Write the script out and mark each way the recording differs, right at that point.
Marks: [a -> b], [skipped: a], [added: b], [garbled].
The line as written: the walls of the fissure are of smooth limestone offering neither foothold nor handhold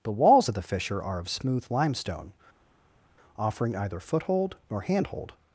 the walls of the fissure are of smooth limestone offering [neither -> either] foothold nor handhold